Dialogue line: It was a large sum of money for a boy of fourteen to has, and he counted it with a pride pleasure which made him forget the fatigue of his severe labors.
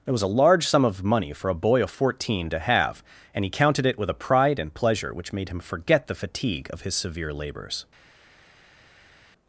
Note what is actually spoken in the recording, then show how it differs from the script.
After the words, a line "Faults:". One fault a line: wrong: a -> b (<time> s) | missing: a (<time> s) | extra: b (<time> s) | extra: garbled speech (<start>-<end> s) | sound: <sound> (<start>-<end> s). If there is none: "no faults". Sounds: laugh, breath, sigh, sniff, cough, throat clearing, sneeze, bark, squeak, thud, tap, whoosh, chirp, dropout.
It was a large sum of money for a boy of fourteen to have, and he counted it with a pride and pleasure which made him forget the fatigue of his severe labors.
Faults:
wrong: has -> have (2.6 s)
extra: and (4.6 s)